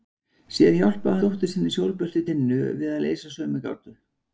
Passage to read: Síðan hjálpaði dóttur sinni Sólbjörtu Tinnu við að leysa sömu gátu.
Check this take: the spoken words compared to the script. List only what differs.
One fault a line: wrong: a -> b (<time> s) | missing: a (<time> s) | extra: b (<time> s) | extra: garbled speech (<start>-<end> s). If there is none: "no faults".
no faults